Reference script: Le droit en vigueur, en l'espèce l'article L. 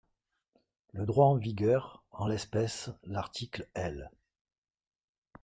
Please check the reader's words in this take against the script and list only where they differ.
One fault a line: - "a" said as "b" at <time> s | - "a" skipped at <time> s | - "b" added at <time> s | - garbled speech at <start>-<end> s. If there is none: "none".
none